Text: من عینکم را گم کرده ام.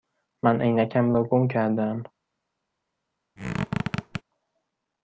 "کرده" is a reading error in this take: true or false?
false